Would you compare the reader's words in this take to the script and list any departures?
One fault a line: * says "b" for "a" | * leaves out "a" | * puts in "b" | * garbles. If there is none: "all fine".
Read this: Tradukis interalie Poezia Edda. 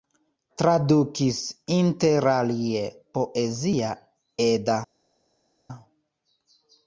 all fine